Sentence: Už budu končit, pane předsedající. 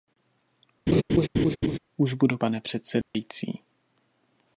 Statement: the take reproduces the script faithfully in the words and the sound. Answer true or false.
false